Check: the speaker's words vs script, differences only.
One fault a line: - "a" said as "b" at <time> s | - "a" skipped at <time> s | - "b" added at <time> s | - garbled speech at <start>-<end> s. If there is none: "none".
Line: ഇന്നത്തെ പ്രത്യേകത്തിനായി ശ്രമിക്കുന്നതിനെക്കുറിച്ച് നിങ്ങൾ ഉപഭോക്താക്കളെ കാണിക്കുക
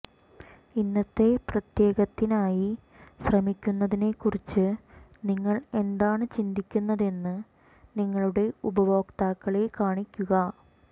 - "എന്താണ് ചിന്തിക്കുന്നതെന്ന് നിങ്ങളുടെ" added at 5.8 s